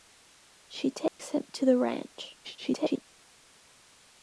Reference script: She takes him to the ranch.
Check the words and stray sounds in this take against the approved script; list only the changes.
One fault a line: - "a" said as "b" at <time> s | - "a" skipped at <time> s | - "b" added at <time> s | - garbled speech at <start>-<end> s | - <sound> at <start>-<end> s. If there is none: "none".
- dropout at 1.1-1.2 s
- garbled speech at 2.4-3.1 s